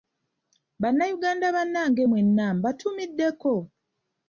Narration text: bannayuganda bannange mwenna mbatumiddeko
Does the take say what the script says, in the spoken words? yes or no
yes